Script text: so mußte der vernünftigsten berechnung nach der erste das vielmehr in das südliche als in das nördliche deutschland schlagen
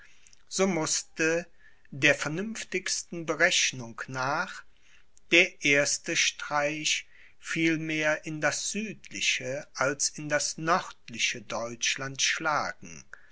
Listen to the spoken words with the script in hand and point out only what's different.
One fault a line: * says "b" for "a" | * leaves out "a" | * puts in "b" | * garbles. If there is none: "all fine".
* says "streich" for "das"